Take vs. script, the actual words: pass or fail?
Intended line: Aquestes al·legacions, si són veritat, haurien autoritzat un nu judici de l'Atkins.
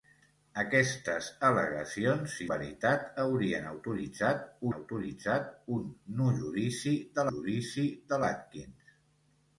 fail